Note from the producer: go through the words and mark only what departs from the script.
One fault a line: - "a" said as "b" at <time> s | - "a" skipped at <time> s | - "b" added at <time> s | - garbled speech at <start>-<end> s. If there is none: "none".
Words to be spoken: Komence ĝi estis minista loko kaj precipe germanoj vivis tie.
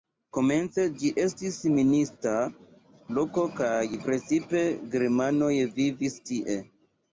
none